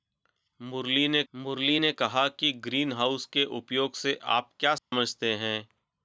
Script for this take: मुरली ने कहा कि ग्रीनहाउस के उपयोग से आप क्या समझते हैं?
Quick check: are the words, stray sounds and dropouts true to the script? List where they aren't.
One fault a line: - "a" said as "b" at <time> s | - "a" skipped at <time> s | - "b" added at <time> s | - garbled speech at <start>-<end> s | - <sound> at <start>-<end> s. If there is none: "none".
- "मुरली ने" added at 1.3 s
- dropout at 4.8-4.9 s